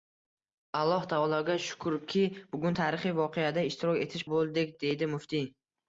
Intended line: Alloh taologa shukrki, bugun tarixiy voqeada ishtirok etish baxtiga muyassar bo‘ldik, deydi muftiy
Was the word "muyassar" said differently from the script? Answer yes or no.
yes